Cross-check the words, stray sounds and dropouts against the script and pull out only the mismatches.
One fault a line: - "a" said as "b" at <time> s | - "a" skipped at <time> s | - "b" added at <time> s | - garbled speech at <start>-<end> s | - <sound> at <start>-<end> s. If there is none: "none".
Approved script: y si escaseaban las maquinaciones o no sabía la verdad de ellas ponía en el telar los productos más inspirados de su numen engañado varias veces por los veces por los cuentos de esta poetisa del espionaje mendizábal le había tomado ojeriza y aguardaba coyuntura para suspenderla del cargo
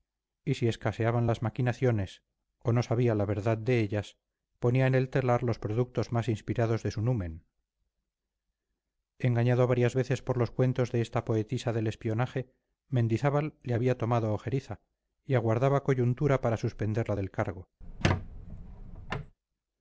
- "veces por los" skipped at 10.5 s
- squeak at 17.8-19.3 s